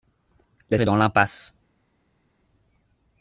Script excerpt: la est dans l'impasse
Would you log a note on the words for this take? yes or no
no